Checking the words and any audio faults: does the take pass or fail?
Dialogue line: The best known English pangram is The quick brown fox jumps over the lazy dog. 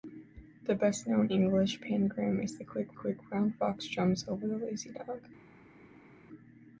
fail